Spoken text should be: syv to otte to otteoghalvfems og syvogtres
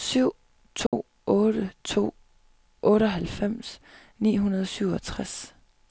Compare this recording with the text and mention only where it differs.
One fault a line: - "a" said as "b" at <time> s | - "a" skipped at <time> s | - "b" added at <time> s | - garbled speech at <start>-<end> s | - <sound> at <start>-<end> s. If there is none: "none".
- dropout at 0.9-0.9 s
- "ni hundrede" added at 4.2 s